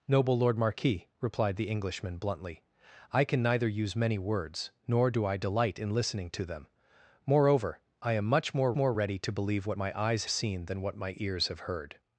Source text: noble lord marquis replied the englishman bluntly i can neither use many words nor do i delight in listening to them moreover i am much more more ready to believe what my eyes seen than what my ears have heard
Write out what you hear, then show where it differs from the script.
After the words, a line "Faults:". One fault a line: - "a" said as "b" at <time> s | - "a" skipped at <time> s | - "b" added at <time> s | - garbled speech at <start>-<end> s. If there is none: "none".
noble lord marquis replied the englishman bluntly i can neither use many words nor do i delight in listening to them moreover i am much more more ready to believe what my eyes seen than what my ears have heard
Faults:
none